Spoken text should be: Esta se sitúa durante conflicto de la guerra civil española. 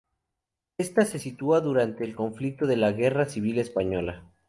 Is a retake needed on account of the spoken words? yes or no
yes